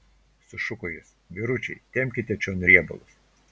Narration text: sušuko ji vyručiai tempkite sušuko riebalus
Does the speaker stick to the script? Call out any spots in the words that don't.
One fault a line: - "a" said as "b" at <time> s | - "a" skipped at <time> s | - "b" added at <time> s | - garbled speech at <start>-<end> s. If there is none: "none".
- "ji" said as "jis" at 0.9 s
- "sušuko" said as "čion" at 2.5 s